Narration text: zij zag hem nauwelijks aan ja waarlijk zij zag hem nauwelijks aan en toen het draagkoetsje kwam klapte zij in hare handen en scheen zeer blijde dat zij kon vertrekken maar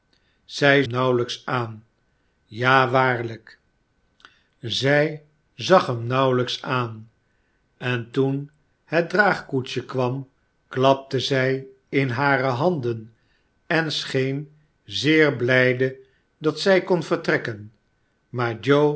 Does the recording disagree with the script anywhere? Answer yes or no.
yes